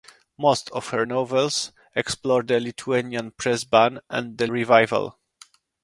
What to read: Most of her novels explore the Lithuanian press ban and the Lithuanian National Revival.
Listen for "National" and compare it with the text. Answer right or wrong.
wrong